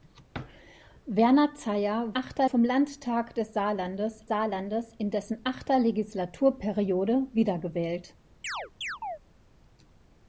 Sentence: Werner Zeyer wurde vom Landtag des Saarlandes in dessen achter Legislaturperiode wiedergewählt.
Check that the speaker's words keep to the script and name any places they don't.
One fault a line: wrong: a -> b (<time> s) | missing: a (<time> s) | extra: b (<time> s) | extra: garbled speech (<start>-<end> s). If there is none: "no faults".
wrong: wurde -> achter (2.1 s)
extra: Saarlandes (4.3 s)